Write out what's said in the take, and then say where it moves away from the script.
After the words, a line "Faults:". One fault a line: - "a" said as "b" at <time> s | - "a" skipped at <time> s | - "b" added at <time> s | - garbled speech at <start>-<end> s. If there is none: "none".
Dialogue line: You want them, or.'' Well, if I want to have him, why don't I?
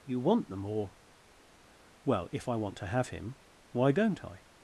You want them, or.'' Well, if I want to have him, why don't I?
Faults:
none